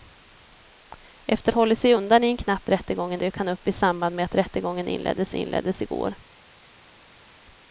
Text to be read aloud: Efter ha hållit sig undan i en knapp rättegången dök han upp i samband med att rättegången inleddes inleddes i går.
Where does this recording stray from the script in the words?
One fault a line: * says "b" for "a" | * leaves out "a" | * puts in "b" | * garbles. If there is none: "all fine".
all fine